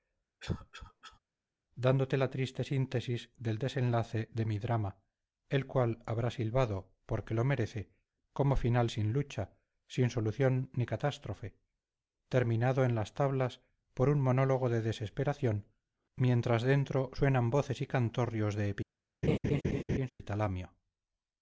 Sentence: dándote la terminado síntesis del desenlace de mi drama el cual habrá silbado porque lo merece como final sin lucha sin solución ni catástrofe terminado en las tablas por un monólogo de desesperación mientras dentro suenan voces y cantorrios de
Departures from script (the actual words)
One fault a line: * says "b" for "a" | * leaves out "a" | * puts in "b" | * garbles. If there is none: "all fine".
* says "triste" for "terminado"